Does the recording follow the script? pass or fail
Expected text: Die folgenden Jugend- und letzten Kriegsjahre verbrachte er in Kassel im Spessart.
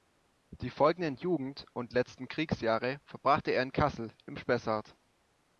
pass